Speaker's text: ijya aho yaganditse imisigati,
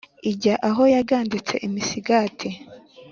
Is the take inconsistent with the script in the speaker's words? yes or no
no